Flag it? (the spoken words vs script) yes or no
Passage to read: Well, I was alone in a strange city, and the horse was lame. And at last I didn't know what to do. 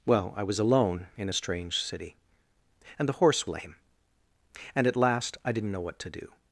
yes